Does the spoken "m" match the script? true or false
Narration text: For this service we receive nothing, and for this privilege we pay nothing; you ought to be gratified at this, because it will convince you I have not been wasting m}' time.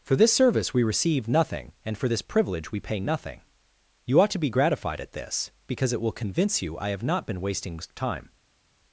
false